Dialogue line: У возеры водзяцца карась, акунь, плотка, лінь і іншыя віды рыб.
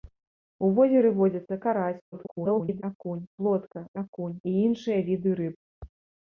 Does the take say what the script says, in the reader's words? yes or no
no